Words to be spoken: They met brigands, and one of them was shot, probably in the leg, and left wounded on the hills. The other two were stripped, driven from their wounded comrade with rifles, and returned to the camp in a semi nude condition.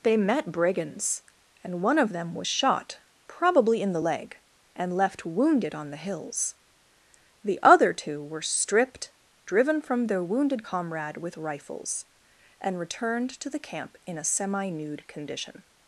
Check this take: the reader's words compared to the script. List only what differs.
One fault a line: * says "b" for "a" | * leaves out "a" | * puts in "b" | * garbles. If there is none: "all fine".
all fine